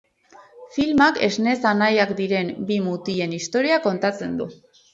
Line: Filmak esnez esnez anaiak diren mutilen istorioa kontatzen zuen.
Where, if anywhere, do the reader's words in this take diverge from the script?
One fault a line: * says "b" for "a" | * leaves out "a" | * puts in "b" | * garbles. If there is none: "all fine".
* leaves out "esnez"
* puts in "bi"
* says "du" for "zuen"